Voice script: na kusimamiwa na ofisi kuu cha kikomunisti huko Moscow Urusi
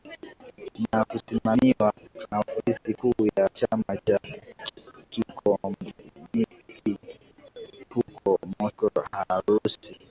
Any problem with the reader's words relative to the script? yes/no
yes